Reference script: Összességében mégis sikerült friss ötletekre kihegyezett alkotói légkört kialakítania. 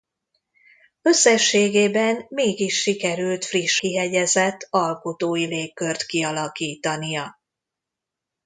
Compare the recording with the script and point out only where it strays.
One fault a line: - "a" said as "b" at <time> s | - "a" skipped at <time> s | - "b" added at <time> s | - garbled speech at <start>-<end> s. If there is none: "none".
- "ötletekre" skipped at 3.8 s